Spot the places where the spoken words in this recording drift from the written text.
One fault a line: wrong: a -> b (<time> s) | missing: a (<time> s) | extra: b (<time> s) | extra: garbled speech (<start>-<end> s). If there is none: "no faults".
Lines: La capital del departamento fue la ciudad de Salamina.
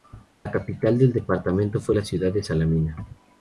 no faults